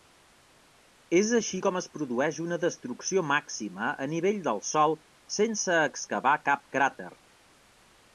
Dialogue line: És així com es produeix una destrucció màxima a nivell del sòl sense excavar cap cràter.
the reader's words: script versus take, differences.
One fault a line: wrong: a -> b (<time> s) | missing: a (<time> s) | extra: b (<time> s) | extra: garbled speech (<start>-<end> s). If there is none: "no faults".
no faults